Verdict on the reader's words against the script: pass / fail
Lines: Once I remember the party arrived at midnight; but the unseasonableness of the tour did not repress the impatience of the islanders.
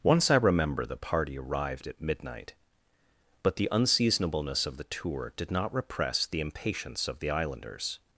pass